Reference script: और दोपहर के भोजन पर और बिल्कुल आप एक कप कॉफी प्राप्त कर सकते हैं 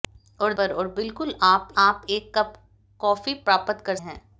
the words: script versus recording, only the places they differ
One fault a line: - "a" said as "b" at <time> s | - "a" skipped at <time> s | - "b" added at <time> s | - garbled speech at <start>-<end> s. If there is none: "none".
- "दोपहर के भोजन" skipped at 0.5 s
- "आप" added at 1.8 s
- "सकते" skipped at 4.0 s